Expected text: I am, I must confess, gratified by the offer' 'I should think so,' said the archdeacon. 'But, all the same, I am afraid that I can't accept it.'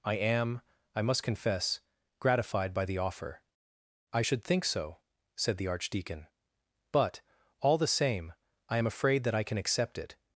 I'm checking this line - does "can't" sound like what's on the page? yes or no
no